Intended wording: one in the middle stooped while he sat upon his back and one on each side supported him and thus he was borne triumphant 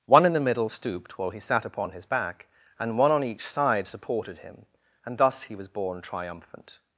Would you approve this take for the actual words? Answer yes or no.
yes